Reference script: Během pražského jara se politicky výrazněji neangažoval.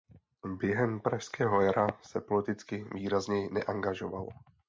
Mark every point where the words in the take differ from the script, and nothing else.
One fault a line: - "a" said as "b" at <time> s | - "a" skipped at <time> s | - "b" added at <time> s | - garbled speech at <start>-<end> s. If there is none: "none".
none